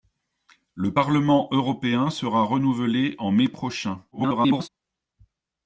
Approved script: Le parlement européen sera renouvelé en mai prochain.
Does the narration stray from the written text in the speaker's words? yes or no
yes